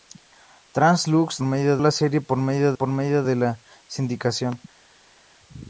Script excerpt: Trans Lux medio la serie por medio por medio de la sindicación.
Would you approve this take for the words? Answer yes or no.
yes